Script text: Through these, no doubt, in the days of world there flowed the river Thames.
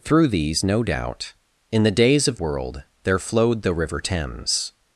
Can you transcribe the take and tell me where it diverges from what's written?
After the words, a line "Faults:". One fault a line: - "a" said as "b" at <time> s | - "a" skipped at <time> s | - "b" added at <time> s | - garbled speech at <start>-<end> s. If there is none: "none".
Through these, no doubt, in the days of world there flowed the river Thames.
Faults:
none